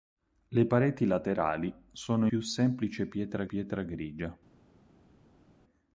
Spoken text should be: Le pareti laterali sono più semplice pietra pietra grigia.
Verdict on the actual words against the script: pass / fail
pass